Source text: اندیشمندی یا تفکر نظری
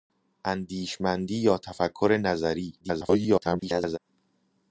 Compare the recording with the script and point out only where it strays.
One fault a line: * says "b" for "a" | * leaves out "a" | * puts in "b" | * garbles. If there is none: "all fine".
* garbles